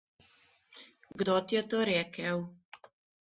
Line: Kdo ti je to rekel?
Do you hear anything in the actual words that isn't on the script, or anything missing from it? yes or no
no